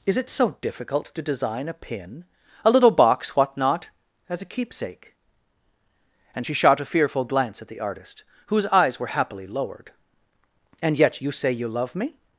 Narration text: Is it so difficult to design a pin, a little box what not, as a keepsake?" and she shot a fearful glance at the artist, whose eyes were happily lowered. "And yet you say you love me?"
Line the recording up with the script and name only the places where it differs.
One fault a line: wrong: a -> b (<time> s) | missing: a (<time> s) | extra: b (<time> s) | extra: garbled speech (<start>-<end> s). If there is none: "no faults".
no faults